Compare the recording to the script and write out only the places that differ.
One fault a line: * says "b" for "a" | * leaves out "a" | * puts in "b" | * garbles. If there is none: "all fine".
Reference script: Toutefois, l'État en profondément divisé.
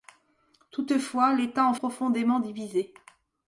all fine